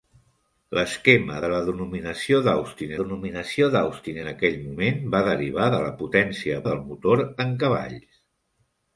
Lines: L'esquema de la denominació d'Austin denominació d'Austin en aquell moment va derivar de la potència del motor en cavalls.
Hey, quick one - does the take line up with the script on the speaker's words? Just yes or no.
yes